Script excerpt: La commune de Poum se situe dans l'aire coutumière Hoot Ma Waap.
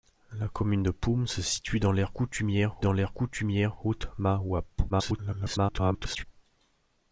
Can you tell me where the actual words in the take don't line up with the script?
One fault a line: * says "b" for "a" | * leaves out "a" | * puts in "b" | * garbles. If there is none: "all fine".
* puts in "dans l'aire coutumière"
* garbles